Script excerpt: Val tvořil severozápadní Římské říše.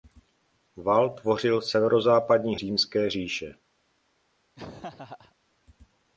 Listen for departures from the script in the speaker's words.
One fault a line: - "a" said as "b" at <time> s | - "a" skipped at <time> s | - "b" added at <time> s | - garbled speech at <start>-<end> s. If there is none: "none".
none